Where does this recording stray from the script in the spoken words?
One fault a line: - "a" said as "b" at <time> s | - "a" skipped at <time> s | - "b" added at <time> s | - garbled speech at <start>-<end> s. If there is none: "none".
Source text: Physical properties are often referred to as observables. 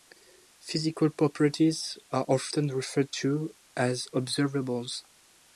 none